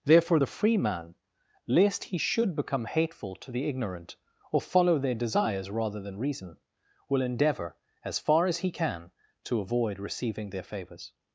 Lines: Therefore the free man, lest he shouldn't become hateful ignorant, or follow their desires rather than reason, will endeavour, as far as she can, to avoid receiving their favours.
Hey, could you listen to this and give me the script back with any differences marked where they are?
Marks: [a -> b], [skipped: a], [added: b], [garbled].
Therefore the free man, lest he [shouldn't -> should] become hateful [added: to the] ignorant, or follow their desires rather than reason, will endeavour, as far as [she -> he] can, to avoid receiving their favours.